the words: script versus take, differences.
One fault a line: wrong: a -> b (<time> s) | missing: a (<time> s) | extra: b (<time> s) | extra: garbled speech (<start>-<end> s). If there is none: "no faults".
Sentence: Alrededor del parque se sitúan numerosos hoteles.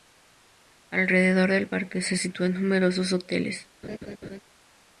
no faults